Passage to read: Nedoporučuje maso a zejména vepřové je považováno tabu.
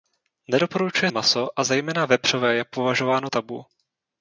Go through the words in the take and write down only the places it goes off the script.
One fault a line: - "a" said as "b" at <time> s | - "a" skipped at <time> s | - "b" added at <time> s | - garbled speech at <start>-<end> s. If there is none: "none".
none